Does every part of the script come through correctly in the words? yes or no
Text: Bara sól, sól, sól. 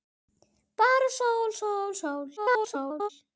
no